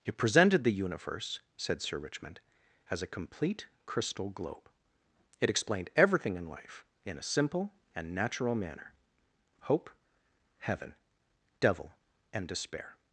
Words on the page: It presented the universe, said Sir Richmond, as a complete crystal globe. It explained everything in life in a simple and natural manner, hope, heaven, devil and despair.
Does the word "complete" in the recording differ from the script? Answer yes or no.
no